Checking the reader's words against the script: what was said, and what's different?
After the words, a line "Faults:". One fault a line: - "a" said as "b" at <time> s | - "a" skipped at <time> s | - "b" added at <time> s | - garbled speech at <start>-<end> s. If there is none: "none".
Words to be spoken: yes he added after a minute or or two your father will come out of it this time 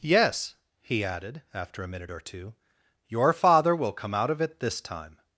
yes he added after a minute or two your father will come out of it this time
Faults:
- "or" skipped at 2.2 s